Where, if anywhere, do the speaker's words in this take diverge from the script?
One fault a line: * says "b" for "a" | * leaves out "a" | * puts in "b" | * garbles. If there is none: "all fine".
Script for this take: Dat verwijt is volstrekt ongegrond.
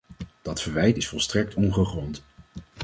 all fine